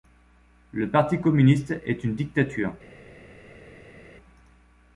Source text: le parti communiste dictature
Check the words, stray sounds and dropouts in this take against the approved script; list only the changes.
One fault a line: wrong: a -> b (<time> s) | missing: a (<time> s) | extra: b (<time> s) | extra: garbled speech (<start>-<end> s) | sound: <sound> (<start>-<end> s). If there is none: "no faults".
extra: est une (1.9 s)